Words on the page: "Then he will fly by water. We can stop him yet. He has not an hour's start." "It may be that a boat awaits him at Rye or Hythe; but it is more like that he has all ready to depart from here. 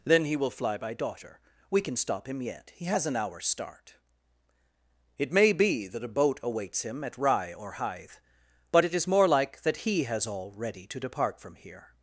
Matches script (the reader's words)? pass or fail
fail